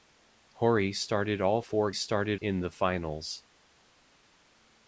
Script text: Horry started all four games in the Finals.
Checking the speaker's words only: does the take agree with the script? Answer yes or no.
no